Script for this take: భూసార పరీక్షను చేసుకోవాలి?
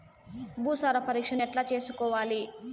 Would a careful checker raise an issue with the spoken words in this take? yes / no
yes